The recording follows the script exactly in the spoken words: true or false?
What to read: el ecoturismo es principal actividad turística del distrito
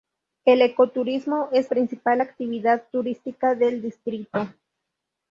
true